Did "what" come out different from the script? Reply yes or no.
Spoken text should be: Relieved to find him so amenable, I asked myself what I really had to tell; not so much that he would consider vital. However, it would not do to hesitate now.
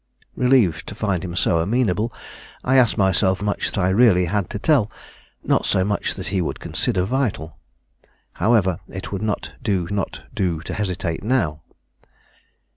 yes